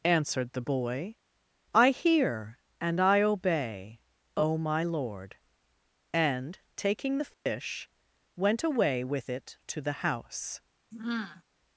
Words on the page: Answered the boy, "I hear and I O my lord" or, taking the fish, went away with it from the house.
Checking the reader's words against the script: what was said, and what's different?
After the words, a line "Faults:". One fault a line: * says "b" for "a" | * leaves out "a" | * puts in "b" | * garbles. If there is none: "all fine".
Answered the boy, "I hear and I obey, O my lord" and, taking the fish, went away with it to the house.
Faults:
* puts in "obey"
* says "and" for "or"
* says "to" for "from"